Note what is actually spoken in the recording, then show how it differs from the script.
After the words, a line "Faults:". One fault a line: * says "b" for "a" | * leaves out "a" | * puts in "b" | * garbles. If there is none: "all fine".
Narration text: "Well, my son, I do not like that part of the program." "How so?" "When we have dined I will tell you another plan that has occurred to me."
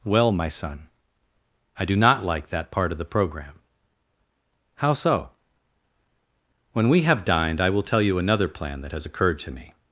"Well, my son, I do not like that part of the program." "How so?" "When we have dined I will tell you another plan that has occurred to me."
Faults:
all fine